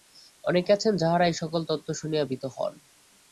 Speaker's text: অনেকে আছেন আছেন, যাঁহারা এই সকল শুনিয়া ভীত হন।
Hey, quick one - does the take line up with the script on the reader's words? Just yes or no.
no